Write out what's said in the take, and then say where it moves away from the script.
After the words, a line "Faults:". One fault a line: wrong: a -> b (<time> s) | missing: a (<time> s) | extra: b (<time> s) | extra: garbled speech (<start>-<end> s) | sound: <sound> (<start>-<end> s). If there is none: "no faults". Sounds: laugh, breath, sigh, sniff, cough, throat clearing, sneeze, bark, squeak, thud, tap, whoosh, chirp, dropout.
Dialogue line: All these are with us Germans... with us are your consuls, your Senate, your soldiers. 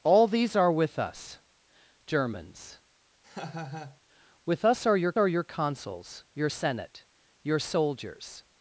All these are with us Germans... with us are your are your consuls, your Senate, your soldiers.
Faults:
sound: laugh (3.2-4.0 s)
extra: are your (5.2 s)